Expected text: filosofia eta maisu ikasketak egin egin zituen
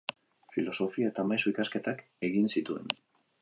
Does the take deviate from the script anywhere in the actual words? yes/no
yes